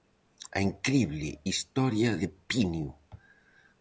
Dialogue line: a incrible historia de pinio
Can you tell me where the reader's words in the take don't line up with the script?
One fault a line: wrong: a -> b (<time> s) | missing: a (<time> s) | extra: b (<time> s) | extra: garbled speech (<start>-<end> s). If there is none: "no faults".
no faults